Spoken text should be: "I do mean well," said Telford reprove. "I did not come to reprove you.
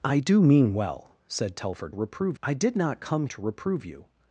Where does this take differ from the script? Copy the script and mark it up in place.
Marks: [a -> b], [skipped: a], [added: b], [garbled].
"I do mean well," said Telford reprove. "I did not come to reprove you.